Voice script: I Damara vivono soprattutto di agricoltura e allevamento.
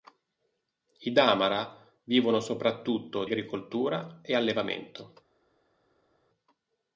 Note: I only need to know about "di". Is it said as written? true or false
false